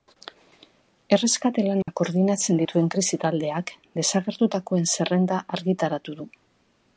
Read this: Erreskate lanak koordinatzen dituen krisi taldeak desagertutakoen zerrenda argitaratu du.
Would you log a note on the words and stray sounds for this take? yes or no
yes